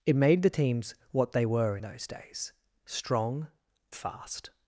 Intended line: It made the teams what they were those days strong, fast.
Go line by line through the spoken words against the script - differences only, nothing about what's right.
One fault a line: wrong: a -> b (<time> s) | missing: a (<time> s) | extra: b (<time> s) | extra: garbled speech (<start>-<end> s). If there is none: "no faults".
no faults